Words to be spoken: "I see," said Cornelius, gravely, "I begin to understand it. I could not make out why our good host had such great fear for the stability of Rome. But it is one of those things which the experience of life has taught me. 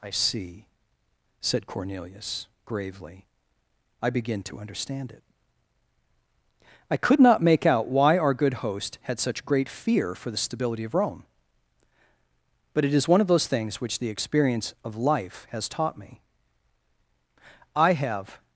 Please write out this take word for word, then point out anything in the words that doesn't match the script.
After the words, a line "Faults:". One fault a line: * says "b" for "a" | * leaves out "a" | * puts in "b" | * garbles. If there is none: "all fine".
"I see," said Cornelius, gravely, "I begin to understand it. I could not make out why our good host had such great fear for the stability of Rome. But it is one of those things which the experience of life has taught me. I have
Faults:
* puts in "I have"